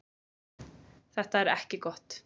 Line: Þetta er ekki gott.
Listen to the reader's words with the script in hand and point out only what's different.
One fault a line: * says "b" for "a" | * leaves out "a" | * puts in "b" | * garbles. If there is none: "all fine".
all fine